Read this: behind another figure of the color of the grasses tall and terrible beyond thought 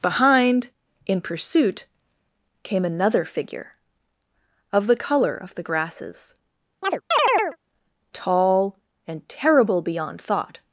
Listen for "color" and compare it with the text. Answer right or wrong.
right